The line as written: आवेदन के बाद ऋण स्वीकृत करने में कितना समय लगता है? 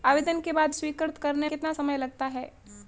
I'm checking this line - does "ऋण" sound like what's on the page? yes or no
no